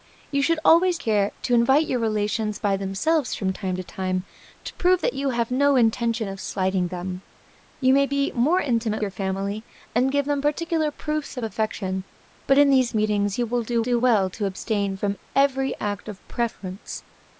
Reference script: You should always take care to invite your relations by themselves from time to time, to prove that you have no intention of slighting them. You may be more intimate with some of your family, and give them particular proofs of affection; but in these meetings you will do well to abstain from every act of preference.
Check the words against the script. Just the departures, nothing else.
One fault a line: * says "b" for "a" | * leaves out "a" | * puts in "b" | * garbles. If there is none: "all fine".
* leaves out "take"
* leaves out "with some of"
* puts in "do"